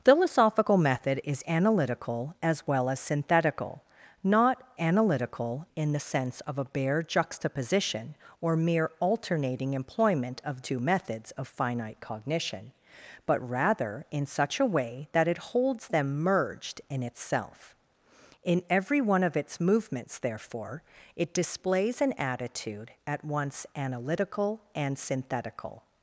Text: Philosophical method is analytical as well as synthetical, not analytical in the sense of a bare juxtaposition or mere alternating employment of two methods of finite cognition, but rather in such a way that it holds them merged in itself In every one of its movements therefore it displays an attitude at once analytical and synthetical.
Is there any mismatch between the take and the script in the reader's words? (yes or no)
no